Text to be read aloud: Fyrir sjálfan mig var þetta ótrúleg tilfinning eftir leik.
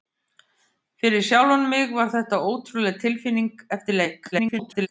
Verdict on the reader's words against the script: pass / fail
fail